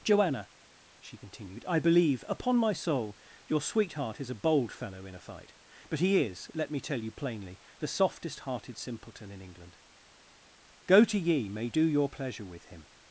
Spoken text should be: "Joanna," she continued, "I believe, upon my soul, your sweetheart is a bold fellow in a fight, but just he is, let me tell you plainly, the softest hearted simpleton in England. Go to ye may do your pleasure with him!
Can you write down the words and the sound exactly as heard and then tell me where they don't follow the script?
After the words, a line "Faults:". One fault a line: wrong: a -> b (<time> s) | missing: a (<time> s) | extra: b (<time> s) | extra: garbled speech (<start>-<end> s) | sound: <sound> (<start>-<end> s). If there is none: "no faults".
"Joanna," she continued, "I believe, upon my soul, your sweetheart is a bold fellow in a fight, but he is, let me tell you plainly, the softest hearted simpleton in England. Go to ye may do your pleasure with him!
Faults:
missing: just (6.0 s)